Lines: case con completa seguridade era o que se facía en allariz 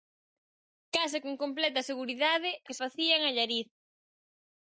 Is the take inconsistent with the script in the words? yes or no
yes